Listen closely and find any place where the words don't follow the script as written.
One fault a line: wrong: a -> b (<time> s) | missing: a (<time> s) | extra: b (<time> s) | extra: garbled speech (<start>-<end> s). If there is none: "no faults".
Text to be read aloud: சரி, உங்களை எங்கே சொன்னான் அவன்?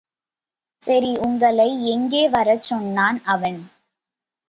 extra: வரச் (2.3 s)